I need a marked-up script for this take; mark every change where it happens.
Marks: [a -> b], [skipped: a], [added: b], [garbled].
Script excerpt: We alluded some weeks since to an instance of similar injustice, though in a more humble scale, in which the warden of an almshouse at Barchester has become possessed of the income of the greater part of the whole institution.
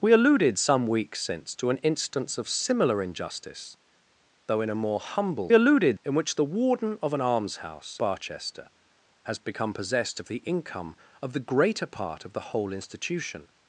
We alluded some weeks since to an instance of similar injustice, though in a more humble [scale, -> alluded] in which the warden of an almshouse [skipped: at] Barchester has become possessed of the income of the greater part of the whole institution.